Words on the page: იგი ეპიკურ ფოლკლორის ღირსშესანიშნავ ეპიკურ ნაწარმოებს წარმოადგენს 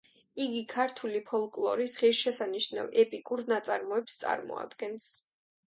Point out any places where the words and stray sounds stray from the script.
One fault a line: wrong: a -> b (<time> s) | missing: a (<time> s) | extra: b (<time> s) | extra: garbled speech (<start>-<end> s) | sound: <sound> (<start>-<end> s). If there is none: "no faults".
wrong: ეპიკურ -> ქართული (0.7 s)